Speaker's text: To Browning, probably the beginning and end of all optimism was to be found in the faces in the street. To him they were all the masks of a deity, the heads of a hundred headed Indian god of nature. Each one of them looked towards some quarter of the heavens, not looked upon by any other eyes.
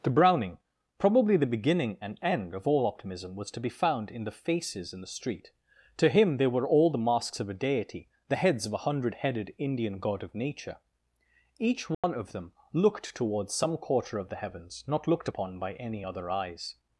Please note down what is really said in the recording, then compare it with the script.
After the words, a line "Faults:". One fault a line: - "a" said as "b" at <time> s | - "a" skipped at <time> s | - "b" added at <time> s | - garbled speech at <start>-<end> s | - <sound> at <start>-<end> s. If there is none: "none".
To Browning, probably the beginning and end of all optimism was to be found in the faces in the street. To him they were all the masks of a deity, the heads of a hundred headed Indian god of nature. Each one of them looked towards some quarter of the heavens, not looked upon by any other eyes.
Faults:
- dropout at 11.9-12.0 s